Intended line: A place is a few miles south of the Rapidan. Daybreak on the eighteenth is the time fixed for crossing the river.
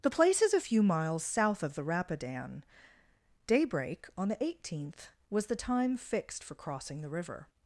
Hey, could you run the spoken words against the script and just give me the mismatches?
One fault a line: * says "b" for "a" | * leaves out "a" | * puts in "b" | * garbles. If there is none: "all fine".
* says "The" for "A"
* says "was" for "is"